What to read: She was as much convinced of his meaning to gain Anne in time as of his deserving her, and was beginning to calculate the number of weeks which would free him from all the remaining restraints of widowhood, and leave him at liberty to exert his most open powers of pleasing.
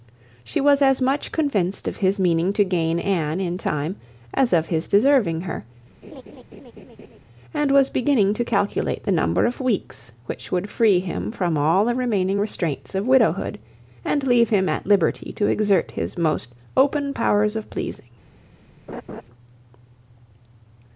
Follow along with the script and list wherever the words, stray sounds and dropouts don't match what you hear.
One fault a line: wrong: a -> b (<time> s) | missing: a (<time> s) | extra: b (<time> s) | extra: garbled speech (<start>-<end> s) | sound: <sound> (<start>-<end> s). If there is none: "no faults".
sound: laugh (6.0-7.2 s)
sound: laugh (18.9-19.2 s)